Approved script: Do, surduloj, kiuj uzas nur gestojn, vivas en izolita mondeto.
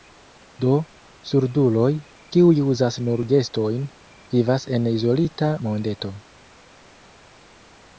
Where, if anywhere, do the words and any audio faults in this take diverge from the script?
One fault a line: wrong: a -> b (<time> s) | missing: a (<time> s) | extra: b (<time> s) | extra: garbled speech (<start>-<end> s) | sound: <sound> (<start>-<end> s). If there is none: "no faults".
no faults